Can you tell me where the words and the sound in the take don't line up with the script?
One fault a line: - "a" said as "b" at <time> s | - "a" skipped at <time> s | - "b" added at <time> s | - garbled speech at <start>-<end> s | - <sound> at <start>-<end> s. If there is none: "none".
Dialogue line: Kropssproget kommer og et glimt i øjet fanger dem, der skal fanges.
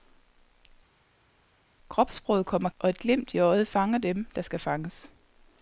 none